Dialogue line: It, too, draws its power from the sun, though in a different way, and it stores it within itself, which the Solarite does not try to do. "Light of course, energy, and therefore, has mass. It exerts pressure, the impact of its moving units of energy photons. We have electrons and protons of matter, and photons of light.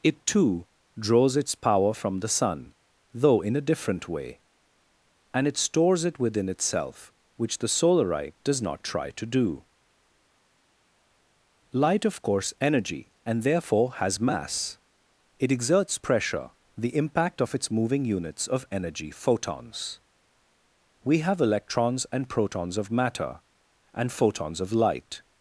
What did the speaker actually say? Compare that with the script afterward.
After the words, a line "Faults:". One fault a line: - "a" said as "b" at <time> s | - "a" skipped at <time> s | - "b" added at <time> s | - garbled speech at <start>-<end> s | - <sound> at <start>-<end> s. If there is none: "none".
It, too, draws its power from the sun, though in a different way, and it stores it within itself, which the Solarite does not try to do. "Light of course, energy, and therefore, has mass. It exerts pressure, the impact of its moving units of energy photons. We have electrons and protons of matter, and photons of light.
Faults:
none